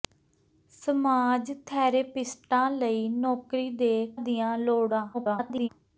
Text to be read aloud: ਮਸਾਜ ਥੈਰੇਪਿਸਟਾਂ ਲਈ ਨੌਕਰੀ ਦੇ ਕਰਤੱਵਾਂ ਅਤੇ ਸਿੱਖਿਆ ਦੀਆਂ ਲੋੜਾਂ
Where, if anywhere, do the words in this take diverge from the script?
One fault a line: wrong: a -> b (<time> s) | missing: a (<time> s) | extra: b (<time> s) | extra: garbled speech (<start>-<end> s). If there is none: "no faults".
missing: ਕਰਤੱਵਾਂ ਅਤੇ ਸਿੱਖਿਆ (3.9 s)
extra: garbled speech (5.1-5.7 s)